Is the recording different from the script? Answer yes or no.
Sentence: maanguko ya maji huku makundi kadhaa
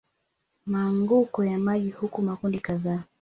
no